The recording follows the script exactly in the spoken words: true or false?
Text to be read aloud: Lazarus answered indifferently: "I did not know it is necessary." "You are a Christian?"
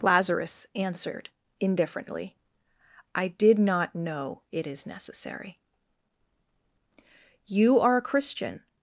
true